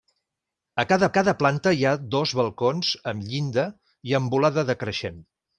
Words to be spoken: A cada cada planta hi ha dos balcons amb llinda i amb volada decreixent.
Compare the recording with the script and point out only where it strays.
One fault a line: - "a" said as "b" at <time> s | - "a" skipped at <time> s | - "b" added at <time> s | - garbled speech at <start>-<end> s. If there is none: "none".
none